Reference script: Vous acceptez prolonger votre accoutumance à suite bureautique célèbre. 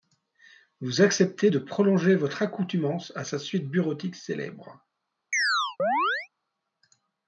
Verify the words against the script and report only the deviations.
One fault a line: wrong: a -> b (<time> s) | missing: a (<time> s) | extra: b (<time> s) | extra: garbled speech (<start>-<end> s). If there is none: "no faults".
extra: de (1.5 s)
extra: sa (3.2 s)